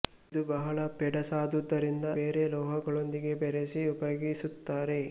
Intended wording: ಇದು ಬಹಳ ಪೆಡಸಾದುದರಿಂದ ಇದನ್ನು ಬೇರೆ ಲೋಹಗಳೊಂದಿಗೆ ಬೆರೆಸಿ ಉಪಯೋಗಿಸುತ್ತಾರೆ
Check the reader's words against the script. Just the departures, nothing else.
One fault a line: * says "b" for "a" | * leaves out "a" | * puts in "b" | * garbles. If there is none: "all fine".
* leaves out "ಇದನ್ನು"